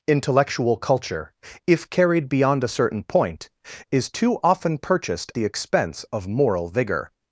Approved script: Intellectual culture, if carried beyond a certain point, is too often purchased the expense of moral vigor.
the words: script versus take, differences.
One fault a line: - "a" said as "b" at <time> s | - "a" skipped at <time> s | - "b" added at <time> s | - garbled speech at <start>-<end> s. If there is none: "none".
none